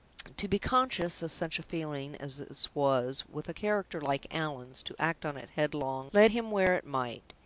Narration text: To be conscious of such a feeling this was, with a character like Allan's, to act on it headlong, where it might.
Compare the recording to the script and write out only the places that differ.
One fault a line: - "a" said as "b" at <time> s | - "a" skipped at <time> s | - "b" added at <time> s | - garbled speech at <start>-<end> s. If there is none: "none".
- "as" added at 2.1 s
- "lead him" added at 6.1 s